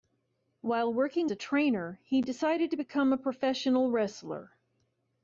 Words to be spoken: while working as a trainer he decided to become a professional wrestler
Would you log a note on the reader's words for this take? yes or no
yes